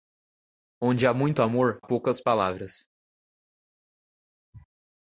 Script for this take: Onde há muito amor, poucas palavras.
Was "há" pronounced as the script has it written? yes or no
yes